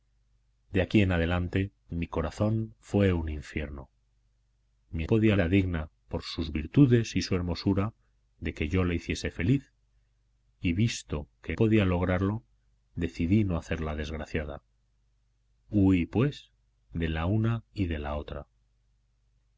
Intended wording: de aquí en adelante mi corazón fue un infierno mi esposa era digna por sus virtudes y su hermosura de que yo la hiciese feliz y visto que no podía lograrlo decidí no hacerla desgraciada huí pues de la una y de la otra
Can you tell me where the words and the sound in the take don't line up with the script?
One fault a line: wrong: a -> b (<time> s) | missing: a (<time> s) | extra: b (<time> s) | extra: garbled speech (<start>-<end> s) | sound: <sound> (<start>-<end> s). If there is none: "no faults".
wrong: esposa -> podía (5.0 s)
missing: no (11.6 s)